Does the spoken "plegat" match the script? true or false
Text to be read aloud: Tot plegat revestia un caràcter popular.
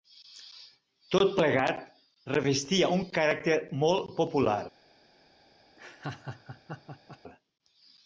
true